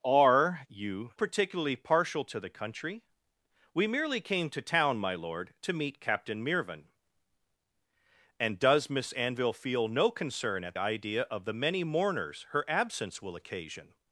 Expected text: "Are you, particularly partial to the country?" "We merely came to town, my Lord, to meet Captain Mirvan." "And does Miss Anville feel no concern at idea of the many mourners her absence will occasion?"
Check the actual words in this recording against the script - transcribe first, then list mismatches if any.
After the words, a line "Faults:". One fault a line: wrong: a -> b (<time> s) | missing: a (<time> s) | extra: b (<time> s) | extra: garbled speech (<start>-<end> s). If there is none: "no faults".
"Are you, particularly partial to the country?" "We merely came to town, my Lord, to meet Captain Mirvan." "And does Miss Anville feel no concern at idea of the many mourners her absence will occasion?"
Faults:
no faults